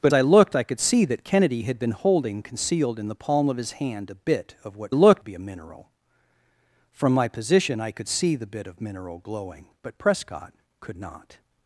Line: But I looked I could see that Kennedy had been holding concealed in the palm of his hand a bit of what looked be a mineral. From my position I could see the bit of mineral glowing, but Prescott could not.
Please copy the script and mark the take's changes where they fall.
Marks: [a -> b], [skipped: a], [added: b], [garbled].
But I looked I could see that Kennedy had been holding concealed in the palm of his hand a bit of what looked be a mineral. From my position I could see the bit of mineral glowing, but Prescott could not.